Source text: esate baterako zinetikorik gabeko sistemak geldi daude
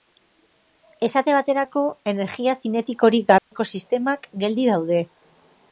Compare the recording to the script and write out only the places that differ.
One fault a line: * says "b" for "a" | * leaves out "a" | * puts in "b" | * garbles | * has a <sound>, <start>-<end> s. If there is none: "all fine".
* puts in "energia"
* has a dropout, 3.4-3.5 s